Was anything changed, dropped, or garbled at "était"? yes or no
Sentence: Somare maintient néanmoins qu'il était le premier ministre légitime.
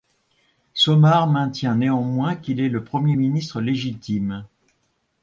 yes